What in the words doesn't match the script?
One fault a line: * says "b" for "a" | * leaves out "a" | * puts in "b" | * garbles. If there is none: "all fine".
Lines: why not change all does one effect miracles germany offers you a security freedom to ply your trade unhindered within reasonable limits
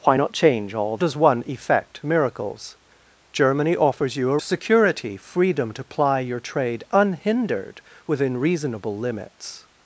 all fine